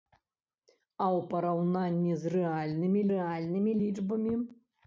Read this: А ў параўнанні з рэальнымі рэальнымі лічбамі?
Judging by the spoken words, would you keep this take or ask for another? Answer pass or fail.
pass